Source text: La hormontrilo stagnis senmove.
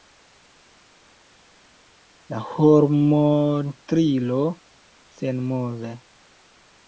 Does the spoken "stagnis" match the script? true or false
false